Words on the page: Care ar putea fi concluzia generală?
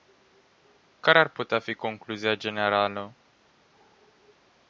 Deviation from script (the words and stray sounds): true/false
false